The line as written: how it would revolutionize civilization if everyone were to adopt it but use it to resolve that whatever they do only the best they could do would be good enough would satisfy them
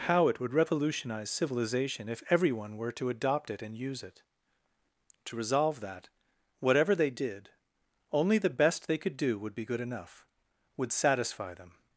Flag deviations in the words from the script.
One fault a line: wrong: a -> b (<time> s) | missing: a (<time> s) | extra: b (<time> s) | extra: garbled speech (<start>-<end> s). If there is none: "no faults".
wrong: but -> and (3.6 s)
wrong: do -> did (7.1 s)